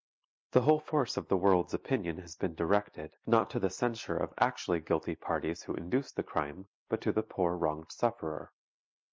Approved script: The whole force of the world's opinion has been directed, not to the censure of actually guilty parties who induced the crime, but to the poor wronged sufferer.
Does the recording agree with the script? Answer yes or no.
yes